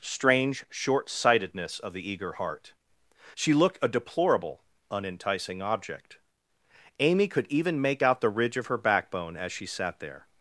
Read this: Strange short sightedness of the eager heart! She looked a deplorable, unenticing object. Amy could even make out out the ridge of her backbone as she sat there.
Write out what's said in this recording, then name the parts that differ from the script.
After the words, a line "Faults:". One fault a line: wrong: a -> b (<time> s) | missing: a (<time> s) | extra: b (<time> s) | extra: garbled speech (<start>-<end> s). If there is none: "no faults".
Strange short sightedness of the eager heart! She looked a deplorable, unenticing object. Amy could even make out the ridge of her backbone as she sat there.
Faults:
missing: out (8.2 s)